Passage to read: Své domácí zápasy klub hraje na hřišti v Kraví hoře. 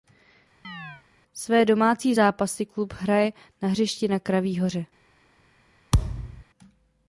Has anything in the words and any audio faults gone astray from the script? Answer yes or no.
yes